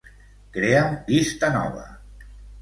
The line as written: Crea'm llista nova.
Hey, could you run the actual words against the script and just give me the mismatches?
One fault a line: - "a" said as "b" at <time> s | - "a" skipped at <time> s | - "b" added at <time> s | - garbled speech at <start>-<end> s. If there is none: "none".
none